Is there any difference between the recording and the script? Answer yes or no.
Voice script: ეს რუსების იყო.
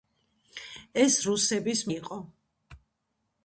no